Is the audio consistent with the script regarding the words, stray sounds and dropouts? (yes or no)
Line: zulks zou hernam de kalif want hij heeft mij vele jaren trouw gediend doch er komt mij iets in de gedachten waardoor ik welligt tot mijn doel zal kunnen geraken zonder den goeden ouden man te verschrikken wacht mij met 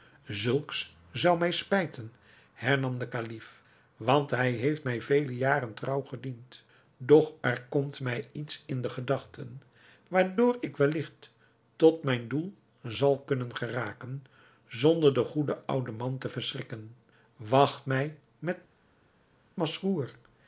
no